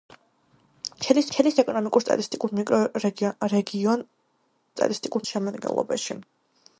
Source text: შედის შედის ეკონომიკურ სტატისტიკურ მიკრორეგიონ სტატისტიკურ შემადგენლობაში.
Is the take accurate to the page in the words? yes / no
yes